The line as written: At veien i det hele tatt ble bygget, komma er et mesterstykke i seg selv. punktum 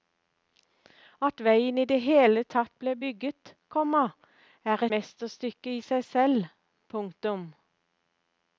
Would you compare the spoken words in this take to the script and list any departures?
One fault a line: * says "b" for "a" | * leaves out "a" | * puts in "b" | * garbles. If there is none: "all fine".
* leaves out "et"